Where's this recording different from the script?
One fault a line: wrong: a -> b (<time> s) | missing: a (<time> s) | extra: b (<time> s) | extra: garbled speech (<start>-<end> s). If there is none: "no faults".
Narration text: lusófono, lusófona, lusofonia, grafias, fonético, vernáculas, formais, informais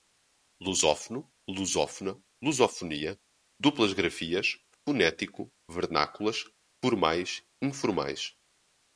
extra: duplas (3.6 s)